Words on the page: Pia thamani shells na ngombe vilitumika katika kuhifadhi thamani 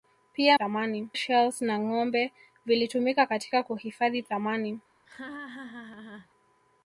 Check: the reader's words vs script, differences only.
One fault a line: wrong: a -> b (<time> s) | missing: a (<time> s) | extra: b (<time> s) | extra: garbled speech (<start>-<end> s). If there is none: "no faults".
no faults